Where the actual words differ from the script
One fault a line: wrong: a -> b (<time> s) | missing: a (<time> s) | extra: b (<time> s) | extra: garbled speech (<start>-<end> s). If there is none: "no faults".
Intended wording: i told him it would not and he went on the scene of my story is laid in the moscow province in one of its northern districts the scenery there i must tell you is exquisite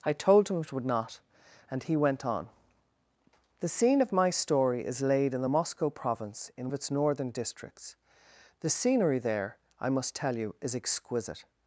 missing: one (6.7 s)